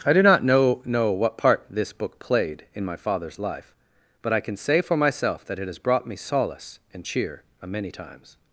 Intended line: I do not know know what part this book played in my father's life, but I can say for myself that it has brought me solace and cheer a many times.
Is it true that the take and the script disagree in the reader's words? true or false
false